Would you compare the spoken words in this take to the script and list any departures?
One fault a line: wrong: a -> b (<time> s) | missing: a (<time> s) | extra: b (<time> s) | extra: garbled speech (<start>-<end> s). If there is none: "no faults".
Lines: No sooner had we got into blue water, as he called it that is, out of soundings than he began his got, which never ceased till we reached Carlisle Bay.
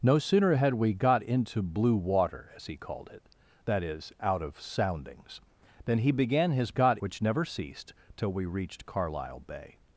no faults